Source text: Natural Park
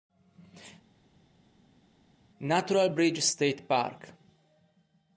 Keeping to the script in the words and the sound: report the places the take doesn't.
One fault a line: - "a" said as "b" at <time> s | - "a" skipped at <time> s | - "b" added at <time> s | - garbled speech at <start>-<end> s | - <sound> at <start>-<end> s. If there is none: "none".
- "Bridge State" added at 2.9 s